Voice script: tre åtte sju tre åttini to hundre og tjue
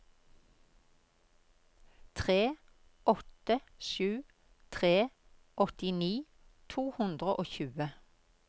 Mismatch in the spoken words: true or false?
false